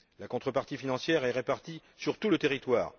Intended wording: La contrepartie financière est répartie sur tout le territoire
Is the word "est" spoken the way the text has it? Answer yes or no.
yes